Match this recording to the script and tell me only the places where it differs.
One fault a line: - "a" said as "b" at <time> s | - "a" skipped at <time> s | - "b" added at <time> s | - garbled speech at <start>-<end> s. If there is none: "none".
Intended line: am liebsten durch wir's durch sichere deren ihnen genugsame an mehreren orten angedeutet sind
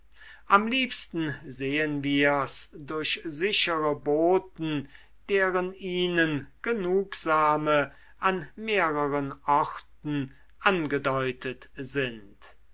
- "durch" said as "sehen" at 1.4 s
- "boten" added at 4.0 s